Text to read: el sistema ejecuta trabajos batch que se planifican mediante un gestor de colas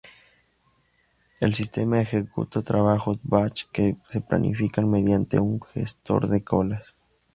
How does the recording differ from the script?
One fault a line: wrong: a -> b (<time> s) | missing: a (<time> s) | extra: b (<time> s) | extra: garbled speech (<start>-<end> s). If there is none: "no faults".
no faults